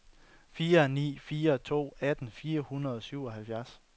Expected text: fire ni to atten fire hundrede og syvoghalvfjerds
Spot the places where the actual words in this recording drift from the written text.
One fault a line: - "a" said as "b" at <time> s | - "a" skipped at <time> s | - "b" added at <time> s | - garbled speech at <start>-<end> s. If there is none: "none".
- "fire" added at 1.2 s